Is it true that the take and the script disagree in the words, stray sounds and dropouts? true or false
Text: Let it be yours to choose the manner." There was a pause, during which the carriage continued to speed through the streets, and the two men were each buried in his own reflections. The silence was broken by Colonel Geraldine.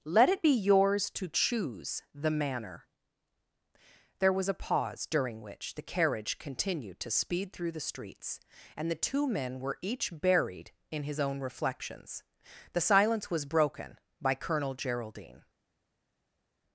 false